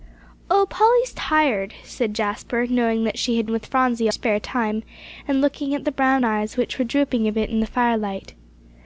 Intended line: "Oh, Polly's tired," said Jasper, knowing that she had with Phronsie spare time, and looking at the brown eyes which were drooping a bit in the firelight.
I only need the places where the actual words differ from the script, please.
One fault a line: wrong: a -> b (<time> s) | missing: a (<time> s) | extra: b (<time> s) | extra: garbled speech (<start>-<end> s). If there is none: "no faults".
no faults